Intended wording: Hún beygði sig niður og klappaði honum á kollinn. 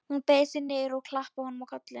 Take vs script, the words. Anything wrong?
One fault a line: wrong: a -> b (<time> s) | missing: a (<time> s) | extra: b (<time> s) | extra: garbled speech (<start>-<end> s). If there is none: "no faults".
no faults